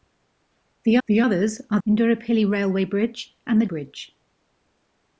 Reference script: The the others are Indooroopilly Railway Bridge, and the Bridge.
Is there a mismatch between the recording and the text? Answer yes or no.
no